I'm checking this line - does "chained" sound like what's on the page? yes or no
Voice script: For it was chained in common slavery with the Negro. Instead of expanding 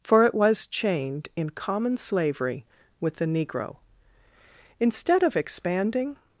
yes